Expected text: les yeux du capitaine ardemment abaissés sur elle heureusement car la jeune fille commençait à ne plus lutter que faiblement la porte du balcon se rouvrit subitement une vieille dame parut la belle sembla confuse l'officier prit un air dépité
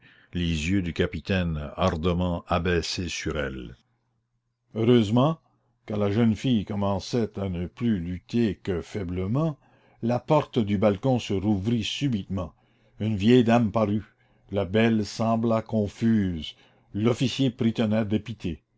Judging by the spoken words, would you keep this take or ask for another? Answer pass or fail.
pass